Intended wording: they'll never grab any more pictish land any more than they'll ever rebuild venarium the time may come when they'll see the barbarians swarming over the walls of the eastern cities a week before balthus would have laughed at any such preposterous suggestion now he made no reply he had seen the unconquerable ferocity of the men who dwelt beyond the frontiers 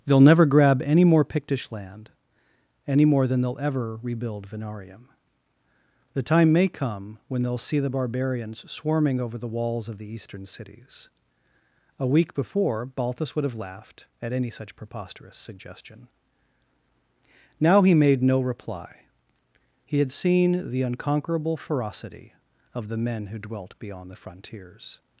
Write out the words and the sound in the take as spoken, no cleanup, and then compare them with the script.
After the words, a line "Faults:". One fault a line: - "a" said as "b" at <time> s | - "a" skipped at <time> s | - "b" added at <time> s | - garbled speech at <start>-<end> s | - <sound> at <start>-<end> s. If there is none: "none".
they'll never grab any more pictish land any more than they'll ever rebuild venarium the time may come when they'll see the barbarians swarming over the walls of the eastern cities a week before balthus would have laughed at any such preposterous suggestion now he made no reply he had seen the unconquerable ferocity of the men who dwelt beyond the frontiers
Faults:
none